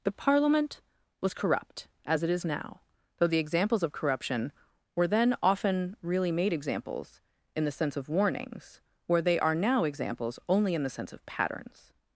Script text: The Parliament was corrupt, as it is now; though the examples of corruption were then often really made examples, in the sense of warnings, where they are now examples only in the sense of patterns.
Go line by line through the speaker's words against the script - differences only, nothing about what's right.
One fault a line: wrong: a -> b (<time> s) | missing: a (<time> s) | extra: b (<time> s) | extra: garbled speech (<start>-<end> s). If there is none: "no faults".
no faults